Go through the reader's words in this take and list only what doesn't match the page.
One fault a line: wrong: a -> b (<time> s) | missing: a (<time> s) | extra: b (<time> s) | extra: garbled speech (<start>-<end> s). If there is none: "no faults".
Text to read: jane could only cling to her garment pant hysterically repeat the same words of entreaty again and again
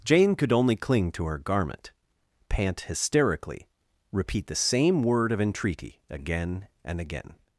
wrong: words -> word (5.0 s)